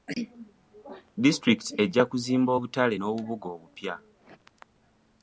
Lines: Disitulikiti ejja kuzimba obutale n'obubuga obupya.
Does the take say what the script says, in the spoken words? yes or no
yes